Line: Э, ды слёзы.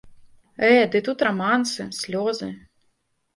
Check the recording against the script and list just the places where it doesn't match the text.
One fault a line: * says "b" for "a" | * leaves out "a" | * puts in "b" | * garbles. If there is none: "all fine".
* puts in "тут рамансы"